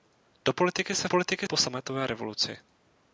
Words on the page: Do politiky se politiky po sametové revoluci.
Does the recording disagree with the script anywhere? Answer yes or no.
no